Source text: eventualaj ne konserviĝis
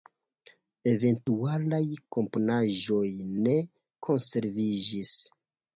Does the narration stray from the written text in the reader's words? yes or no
yes